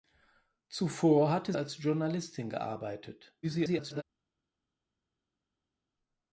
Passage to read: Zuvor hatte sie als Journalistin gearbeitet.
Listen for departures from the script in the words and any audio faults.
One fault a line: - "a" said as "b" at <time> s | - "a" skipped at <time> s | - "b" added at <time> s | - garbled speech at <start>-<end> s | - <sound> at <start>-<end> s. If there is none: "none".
- "sie" skipped at 1.5 s
- garbled speech at 3.4-4.0 s